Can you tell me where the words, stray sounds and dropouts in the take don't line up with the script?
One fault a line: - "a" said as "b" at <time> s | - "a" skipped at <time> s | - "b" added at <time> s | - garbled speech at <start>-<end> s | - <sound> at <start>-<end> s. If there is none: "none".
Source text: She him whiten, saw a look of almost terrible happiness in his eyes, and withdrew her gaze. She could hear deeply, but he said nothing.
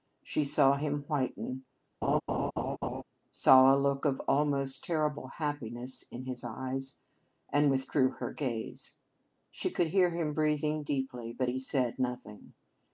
- "saw" added at 0.4 s
- laugh at 2.0-3.0 s
- "him breathing" added at 10.1 s